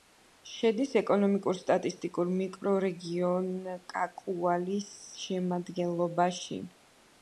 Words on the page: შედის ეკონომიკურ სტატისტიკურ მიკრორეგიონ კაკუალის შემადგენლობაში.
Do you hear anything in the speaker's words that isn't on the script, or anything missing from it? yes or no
no